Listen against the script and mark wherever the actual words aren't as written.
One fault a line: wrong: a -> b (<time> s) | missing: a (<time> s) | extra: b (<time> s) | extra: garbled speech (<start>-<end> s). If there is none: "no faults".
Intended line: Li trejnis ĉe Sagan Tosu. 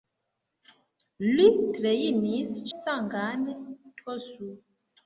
missing: ĉe (2.6 s)